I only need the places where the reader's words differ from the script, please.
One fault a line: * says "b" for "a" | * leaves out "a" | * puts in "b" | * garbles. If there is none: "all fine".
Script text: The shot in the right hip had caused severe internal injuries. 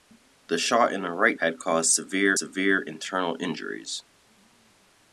* leaves out "hip"
* puts in "severe"